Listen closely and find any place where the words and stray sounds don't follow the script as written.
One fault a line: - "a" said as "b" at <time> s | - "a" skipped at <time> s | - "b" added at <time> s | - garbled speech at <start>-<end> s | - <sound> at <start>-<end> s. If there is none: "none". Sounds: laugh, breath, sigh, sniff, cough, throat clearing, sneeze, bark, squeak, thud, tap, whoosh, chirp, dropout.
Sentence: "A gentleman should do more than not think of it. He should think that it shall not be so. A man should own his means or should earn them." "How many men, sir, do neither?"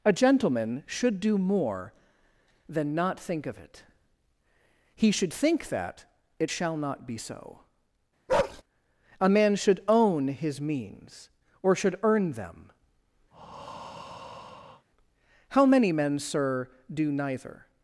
- bark at 8.3-8.6 s
- breath at 13.3-14.9 s